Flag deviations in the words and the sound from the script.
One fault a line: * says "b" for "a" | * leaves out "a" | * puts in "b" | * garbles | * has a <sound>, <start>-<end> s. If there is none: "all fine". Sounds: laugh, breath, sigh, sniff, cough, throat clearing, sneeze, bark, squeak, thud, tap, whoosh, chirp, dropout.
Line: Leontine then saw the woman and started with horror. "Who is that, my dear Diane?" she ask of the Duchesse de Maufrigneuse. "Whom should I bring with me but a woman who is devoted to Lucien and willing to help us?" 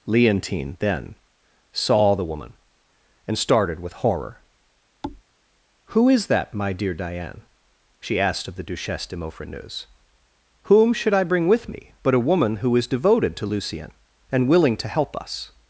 * has a thud, 5.0-5.2 s
* says "asked" for "ask"